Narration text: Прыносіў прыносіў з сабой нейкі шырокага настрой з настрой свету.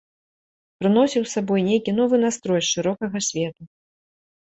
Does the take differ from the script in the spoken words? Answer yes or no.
yes